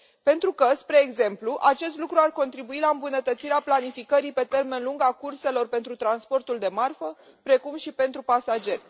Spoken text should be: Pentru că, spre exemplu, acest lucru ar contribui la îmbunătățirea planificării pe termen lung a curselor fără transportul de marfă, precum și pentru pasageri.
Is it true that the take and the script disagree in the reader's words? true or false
true